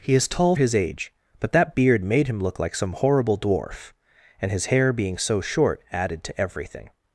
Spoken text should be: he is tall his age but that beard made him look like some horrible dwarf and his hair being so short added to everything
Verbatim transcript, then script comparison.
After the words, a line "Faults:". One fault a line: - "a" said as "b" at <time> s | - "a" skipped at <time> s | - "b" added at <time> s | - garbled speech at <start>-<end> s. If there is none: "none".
he is tall his age but that beard made him look like some horrible dwarf and his hair being so short added to everything
Faults:
none